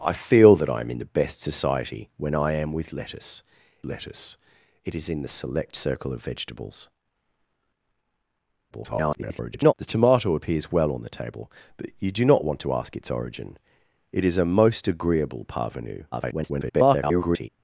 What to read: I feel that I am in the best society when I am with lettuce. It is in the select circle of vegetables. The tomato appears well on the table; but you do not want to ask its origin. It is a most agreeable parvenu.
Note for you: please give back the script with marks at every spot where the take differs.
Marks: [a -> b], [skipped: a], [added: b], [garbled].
I feel that I am in the best society when I am with lettuce. [added: lettuce] It is in the select circle of vegetables. [garbled] The tomato appears well on the table; but you do not want to ask its origin. It is a most agreeable parvenu. [garbled]